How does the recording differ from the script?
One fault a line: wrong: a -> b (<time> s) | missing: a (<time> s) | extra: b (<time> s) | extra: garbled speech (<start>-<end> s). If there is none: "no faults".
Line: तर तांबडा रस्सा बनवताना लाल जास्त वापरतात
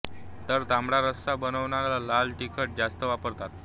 extra: तिखट (2.4 s)